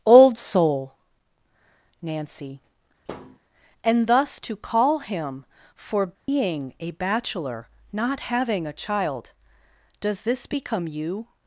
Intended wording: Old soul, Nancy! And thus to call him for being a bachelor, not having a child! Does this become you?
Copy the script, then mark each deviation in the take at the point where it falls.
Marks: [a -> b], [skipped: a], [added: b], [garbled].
Old soul, Nancy! And thus to call him for being a bachelor, not having a child! Does this become you?